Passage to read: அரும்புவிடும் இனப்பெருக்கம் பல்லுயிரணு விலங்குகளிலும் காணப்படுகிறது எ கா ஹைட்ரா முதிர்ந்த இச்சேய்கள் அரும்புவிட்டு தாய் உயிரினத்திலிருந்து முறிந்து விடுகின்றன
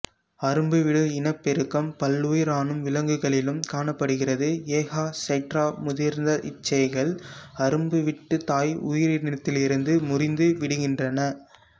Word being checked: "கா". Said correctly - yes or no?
yes